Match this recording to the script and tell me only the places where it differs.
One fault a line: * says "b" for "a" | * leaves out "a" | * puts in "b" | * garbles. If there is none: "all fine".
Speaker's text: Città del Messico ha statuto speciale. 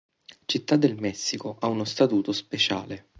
* puts in "uno"